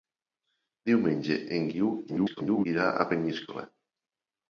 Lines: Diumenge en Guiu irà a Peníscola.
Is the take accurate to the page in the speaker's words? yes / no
no